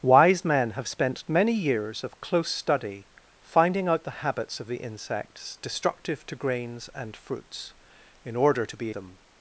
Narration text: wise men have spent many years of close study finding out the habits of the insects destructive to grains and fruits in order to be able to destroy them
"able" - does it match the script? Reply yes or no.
no